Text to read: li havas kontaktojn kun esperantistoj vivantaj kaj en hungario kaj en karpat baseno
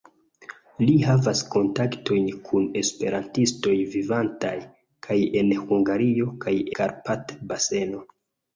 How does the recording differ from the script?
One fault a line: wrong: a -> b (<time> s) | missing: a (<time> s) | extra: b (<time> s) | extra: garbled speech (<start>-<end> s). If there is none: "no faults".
missing: en (6.5 s)